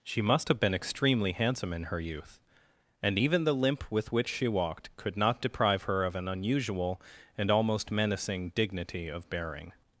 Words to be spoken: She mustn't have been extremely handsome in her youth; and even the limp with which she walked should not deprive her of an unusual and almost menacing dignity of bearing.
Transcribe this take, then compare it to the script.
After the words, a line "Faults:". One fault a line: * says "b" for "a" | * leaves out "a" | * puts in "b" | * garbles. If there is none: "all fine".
She must have been extremely handsome in her youth; and even the limp with which she walked could not deprive her of an unusual and almost menacing dignity of bearing.
Faults:
* says "must" for "mustn't"
* says "could" for "should"